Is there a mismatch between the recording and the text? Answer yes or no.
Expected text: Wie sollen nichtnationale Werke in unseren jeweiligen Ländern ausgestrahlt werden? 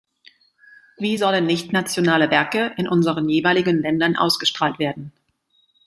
no